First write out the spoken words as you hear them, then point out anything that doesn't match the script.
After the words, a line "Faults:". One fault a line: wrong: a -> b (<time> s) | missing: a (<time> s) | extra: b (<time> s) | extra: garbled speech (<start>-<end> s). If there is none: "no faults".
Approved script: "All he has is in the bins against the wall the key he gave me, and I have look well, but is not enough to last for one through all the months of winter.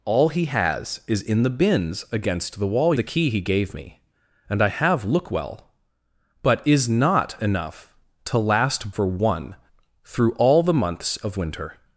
"All he has is in the bins against the wall the key he gave me, and I have look well, but is not enough to last for one through all the months of winter.
Faults:
no faults